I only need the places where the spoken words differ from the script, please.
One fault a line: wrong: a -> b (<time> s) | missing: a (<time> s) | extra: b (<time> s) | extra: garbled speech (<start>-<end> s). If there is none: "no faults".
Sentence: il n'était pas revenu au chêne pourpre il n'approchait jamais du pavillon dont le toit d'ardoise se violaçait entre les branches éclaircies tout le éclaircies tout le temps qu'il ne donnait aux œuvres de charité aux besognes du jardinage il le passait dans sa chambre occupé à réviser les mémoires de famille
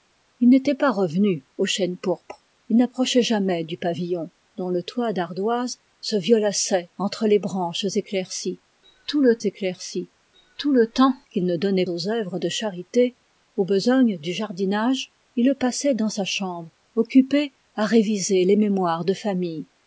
no faults